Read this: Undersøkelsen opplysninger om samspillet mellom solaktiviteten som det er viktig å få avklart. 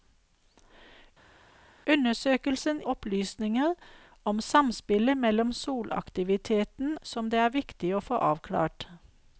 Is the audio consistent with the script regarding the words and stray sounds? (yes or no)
yes